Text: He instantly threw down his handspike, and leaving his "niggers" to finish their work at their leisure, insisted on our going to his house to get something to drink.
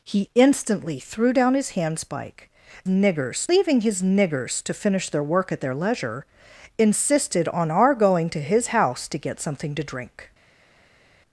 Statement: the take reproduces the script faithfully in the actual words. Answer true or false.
false